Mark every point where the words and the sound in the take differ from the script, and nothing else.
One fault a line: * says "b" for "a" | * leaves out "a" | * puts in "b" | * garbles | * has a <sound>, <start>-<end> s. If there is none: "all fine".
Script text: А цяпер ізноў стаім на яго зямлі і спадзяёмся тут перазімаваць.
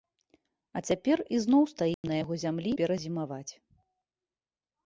* has a dropout, 1.9-2.0 s
* leaves out "і спадзяёмся тут"